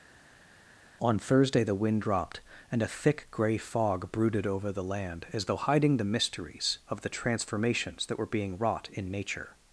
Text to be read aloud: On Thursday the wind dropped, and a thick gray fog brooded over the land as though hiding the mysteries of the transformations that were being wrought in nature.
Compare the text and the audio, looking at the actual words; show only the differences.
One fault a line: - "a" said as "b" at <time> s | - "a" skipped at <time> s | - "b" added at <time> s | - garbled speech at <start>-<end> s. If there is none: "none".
none